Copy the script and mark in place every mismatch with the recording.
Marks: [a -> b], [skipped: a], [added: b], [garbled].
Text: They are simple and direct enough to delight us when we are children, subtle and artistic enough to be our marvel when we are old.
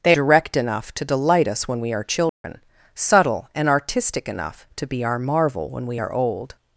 They [skipped: are simple and] direct enough to delight us when we are children, subtle and artistic enough to be our marvel when we are old.